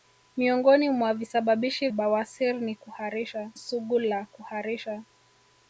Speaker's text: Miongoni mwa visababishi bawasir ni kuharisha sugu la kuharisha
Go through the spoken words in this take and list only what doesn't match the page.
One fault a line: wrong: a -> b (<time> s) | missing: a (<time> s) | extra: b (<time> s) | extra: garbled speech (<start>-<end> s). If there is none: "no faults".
no faults